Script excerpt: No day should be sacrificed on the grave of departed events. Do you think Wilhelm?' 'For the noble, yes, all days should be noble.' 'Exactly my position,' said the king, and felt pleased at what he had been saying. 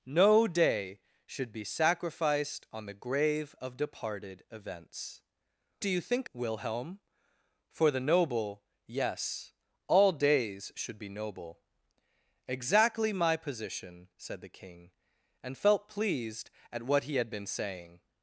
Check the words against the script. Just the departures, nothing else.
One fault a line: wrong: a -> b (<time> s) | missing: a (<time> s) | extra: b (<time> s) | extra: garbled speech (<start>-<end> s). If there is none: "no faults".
no faults